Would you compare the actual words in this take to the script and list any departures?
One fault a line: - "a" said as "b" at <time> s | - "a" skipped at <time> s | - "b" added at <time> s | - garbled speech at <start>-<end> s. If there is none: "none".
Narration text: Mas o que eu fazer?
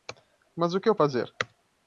none